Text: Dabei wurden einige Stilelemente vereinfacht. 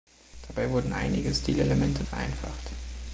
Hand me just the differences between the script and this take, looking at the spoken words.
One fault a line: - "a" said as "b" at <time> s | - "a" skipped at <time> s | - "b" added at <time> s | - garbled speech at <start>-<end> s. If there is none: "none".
none